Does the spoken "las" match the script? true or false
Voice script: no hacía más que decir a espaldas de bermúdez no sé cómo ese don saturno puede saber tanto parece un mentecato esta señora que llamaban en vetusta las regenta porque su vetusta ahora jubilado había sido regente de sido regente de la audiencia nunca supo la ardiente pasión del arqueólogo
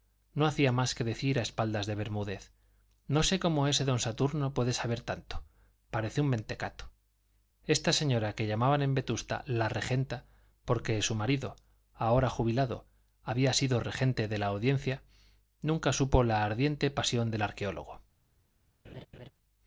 false